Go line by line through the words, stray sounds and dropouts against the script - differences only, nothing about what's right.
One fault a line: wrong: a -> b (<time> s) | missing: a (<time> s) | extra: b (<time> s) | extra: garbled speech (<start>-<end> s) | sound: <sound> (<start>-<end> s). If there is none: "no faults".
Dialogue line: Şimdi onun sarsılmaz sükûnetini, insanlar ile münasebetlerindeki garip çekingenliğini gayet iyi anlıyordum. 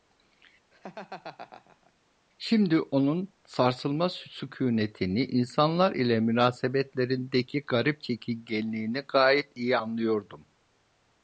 sound: laugh (0.7-1.9 s)